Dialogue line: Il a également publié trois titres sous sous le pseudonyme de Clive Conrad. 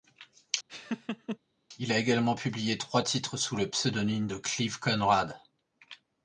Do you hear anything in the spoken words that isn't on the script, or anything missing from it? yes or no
yes